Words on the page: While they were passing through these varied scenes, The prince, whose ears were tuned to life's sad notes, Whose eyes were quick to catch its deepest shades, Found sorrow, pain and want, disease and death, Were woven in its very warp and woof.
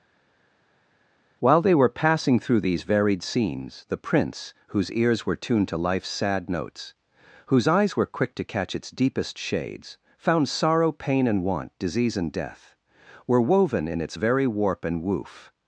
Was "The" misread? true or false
false